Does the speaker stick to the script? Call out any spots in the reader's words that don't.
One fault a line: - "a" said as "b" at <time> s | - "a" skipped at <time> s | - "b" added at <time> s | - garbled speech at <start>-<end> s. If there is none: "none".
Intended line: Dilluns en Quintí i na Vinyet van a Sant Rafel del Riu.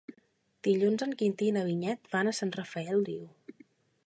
- "del" skipped at 3.1 s